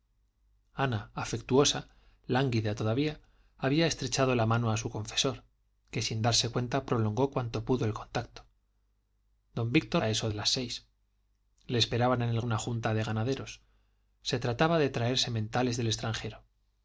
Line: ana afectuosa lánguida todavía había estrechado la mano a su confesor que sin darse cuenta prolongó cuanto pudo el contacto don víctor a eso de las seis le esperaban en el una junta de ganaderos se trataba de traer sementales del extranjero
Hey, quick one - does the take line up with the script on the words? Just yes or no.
yes